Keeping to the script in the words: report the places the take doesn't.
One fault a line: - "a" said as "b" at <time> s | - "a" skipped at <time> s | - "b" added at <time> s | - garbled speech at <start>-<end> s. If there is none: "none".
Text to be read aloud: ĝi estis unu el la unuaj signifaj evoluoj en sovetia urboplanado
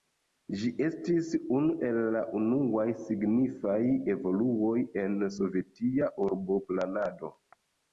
none